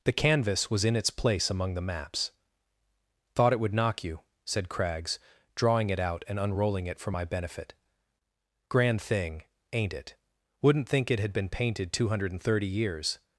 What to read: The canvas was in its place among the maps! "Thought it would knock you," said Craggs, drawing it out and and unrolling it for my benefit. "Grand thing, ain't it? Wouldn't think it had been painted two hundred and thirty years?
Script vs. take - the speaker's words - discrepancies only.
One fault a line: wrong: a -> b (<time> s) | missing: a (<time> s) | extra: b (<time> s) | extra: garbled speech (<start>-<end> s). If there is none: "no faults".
missing: and (6.4 s)